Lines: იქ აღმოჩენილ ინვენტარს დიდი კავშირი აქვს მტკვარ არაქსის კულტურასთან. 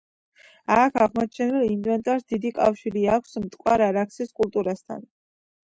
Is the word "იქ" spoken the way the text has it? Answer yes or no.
no